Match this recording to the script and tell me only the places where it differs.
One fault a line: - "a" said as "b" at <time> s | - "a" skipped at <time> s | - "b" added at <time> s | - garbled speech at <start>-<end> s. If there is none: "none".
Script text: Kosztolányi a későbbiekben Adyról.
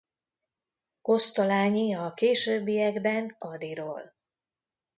none